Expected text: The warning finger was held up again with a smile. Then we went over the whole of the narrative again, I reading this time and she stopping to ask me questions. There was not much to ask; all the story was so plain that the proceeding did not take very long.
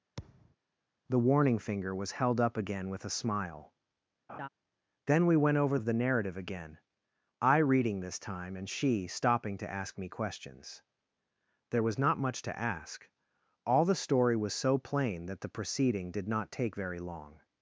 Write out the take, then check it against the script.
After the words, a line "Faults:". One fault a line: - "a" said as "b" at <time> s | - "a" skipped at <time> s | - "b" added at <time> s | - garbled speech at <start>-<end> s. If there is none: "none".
The warning finger was held up again with a smile. Then we went over of the narrative again, I reading this time and she stopping to ask me questions. There was not much to ask; all the story was so plain that the proceeding did not take very long.
Faults:
- "the whole" skipped at 5.8 s